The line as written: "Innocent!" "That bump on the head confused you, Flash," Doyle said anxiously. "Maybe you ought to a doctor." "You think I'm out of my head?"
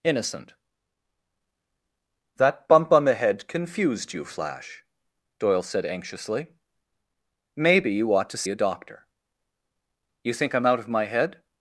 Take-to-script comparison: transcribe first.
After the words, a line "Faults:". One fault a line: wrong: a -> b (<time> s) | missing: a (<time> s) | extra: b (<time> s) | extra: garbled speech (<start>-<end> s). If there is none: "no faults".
"Innocent!" "That bump on the head confused you, Flash," Doyle said anxiously. "Maybe you ought to a doctor." "You think I'm out of my head?"
Faults:
no faults